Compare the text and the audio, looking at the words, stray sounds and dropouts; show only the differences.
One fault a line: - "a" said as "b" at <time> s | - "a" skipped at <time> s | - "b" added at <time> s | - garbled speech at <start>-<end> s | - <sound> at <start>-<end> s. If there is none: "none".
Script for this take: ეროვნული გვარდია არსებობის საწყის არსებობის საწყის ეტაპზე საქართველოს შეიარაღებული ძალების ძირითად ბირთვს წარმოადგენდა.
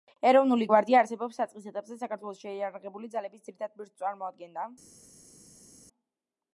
- "არსებობის საწყის" skipped at 1.7 s